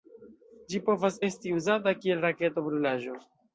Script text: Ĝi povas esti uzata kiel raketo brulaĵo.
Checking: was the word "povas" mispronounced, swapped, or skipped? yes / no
no